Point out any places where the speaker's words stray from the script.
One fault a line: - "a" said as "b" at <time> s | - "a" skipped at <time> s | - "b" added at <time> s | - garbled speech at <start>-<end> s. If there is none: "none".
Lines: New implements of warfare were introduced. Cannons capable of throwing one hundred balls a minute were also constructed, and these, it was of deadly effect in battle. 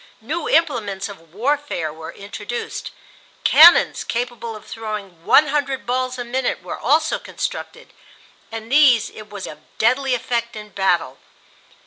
none